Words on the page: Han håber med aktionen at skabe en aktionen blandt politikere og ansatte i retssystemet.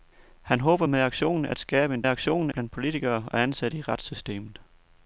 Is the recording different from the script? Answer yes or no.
no